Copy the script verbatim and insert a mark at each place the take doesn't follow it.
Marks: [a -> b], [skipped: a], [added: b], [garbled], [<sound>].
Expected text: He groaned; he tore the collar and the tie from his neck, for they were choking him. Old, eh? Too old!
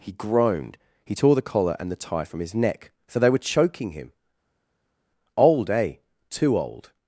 He groaned; he tore the collar and the tie from his neck, [for -> so] they were choking him. Old, eh? Too old!